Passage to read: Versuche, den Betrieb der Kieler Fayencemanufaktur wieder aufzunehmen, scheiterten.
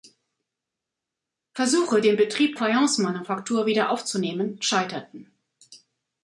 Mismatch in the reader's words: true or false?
true